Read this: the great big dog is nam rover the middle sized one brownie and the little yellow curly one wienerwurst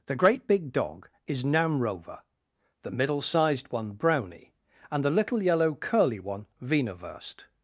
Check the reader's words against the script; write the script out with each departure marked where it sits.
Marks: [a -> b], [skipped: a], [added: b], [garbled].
the great big dog is nam rover the middle sized one brownie and the little yellow curly one wienerwurst